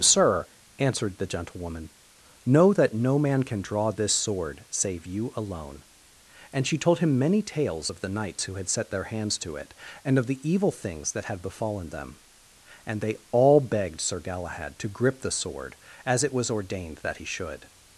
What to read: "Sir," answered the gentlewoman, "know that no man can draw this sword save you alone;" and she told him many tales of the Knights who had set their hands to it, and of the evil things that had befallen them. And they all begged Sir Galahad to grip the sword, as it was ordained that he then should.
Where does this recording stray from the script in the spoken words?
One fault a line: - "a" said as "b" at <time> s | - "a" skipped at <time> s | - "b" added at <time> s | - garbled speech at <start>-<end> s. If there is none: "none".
- "then" skipped at 17.2 s